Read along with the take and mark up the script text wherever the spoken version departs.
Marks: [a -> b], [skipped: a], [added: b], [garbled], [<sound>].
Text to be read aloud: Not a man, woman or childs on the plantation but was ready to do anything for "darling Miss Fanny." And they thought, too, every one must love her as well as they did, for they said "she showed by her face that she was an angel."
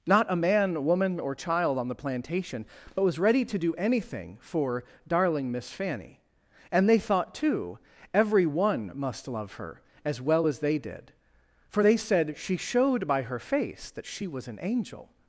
Not a man, woman or [childs -> child] on the plantation but was ready to do anything for "darling Miss Fanny." And they thought, too, every one must love her as well as they did, for they said "she showed by her face that she was an angel."